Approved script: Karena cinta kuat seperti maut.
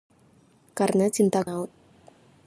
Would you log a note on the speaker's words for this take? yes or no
yes